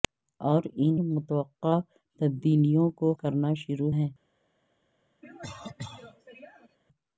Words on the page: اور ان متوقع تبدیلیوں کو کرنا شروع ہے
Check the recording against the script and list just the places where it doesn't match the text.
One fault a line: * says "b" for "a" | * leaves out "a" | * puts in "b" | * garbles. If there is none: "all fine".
all fine